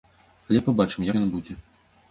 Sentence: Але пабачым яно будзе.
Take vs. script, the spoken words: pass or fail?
pass